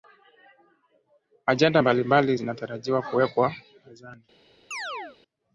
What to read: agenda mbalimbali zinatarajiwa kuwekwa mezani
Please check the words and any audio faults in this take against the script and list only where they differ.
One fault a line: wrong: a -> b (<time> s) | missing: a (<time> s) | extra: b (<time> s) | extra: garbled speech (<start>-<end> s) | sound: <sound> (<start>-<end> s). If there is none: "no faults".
sound: chirp (4.7-5.2 s)